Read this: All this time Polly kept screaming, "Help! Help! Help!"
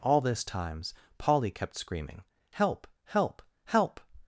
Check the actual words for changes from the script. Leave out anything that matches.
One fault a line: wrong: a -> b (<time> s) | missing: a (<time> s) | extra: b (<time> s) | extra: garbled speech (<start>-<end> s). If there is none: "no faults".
wrong: time -> times (0.4 s)